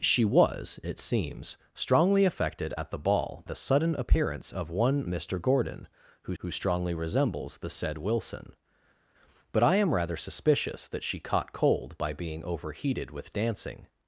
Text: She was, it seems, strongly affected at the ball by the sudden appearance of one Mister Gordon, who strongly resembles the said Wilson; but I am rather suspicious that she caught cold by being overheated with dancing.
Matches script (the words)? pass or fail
fail